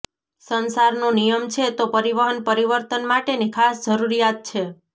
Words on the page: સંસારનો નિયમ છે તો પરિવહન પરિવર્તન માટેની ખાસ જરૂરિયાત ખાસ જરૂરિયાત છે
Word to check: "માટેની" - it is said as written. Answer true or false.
true